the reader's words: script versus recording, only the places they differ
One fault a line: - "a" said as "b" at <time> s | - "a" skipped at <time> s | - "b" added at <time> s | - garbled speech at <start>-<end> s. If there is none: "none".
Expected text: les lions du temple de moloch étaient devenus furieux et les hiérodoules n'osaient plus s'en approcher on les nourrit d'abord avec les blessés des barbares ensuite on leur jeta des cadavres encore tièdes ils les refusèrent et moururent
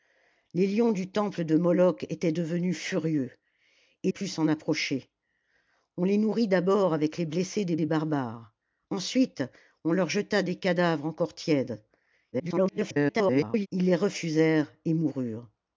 - "les hiérodoules n'osaient" skipped at 4.1 s
- "des" added at 7.7 s
- garbled speech at 12.3-13.7 s